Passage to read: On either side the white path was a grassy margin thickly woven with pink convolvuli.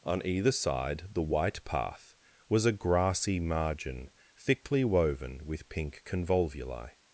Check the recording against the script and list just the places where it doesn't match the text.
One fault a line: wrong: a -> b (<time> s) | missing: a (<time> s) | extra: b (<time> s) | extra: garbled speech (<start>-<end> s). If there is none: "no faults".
no faults